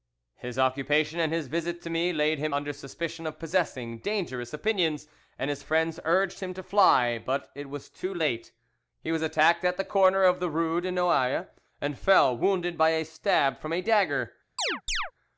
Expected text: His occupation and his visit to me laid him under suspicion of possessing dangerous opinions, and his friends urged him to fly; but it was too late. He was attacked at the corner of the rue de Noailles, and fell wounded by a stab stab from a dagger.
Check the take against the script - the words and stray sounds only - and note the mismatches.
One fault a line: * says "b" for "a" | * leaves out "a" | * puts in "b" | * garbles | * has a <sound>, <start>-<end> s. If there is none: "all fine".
* leaves out "stab"
* has a chirp, 14.6-15.1 s